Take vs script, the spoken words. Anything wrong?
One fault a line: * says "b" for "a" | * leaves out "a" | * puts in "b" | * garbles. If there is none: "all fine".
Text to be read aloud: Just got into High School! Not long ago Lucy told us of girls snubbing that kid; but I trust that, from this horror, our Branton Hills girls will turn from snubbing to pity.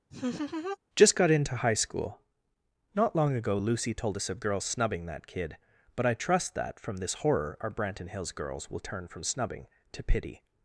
all fine